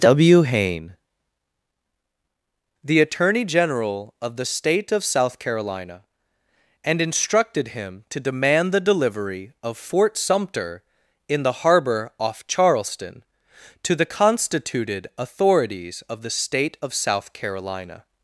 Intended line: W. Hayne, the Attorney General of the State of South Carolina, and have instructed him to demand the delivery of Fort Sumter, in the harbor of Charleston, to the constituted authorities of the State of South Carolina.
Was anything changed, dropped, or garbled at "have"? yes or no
yes